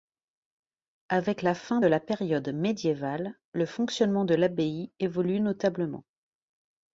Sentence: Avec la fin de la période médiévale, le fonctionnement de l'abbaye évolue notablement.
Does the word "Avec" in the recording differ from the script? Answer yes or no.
no